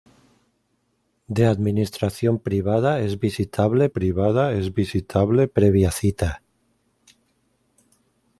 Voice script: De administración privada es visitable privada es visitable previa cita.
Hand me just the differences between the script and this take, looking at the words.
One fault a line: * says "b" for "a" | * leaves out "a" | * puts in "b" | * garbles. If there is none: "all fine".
all fine